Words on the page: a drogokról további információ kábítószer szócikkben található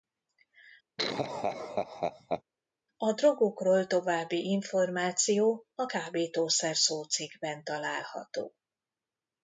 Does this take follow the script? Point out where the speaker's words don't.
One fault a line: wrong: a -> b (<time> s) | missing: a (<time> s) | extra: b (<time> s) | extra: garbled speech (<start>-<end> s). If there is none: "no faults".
extra: a (5.7 s)